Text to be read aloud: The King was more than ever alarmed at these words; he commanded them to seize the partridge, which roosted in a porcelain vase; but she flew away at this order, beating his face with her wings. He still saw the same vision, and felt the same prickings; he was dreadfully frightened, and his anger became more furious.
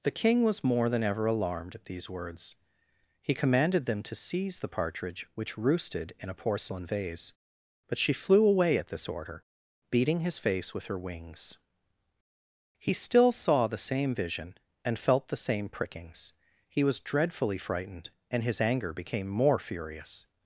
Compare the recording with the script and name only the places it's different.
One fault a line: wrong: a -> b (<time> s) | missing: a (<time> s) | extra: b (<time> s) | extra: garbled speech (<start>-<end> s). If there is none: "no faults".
no faults